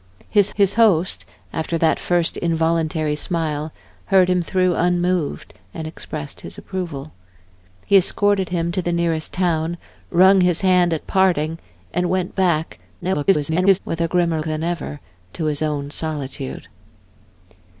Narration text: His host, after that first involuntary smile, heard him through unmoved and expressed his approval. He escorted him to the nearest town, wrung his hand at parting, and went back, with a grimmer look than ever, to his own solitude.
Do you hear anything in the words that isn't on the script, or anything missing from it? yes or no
yes